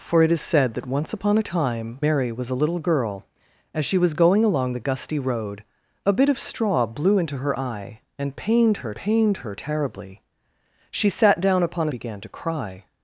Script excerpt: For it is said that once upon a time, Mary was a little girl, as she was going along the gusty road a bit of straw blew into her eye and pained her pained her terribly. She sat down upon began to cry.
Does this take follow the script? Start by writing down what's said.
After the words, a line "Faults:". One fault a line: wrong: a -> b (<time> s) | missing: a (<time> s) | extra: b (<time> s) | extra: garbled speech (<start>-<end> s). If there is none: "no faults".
For it is said that once upon a time, Mary was a little girl, as she was going along the gusty road a bit of straw blew into her eye and pained her pained her terribly. She sat down upon began to cry.
Faults:
no faults